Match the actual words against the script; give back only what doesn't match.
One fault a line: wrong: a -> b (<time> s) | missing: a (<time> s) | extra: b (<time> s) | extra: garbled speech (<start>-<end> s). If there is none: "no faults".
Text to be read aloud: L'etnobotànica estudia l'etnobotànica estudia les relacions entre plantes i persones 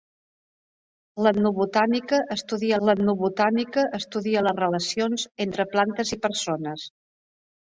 no faults